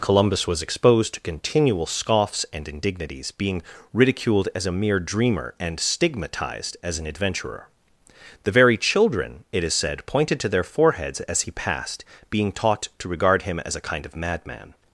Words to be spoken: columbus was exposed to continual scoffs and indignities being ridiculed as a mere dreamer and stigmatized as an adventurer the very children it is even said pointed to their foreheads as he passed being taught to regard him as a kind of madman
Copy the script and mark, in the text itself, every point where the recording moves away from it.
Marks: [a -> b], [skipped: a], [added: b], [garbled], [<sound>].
columbus was exposed to continual scoffs and indignities being ridiculed as a mere dreamer and stigmatized as an adventurer the very children it is [skipped: even] said pointed to their foreheads as he passed being taught to regard him as a kind of madman